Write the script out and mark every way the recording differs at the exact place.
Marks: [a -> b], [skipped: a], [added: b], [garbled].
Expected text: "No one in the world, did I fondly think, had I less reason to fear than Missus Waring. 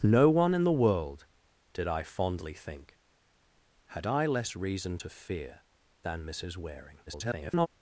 "No one in the world, did I fondly think, had I less reason to fear than Missus Waring. [garbled]